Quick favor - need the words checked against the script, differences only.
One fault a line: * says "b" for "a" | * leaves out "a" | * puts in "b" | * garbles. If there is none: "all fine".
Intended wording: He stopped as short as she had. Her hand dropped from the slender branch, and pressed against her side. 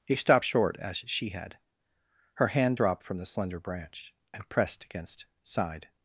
* leaves out "as"
* leaves out "her"